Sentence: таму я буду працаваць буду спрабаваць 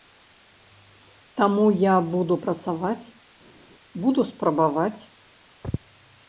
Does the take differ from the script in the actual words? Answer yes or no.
no